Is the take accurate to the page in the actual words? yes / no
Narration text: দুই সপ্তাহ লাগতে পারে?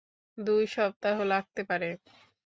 yes